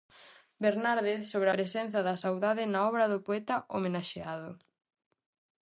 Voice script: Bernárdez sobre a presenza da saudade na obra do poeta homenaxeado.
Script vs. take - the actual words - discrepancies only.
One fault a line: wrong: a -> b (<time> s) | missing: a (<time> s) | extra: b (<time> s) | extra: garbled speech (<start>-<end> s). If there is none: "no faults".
missing: a (1.5 s)